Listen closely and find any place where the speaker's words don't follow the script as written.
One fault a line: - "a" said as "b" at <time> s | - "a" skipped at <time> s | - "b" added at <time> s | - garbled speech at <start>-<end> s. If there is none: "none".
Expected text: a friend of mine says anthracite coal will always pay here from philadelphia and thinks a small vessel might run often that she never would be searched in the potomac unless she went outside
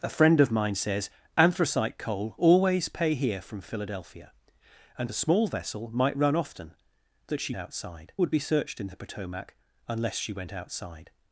- "will" skipped at 2.4 s
- "thinks" skipped at 5.1 s
- "never" said as "outside" at 7.6 s